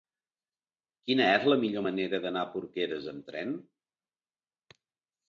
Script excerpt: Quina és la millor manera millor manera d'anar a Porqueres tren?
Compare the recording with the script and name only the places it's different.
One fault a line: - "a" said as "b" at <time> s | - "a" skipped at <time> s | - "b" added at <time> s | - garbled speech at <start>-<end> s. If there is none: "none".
- "millor manera" skipped at 2.2 s
- "amb" added at 3.1 s